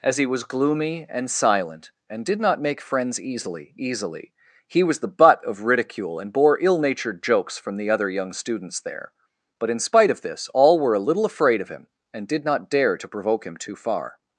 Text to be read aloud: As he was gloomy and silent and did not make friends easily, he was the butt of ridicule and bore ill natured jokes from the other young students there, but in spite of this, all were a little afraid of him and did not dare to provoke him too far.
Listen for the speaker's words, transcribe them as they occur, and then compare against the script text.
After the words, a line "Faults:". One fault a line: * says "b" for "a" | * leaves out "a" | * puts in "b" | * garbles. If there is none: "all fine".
As he was gloomy and silent and did not make friends easily easily, he was the butt of ridicule and bore ill natured jokes from the other young students there, but in spite of this, all were a little afraid of him and did not dare to provoke him too far.
Faults:
* puts in "easily"